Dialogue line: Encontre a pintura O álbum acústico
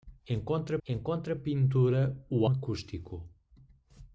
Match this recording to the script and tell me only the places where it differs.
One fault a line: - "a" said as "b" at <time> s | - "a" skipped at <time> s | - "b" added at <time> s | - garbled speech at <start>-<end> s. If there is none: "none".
- "encontre" added at 0.9 s
- "álbum" skipped at 2.5 s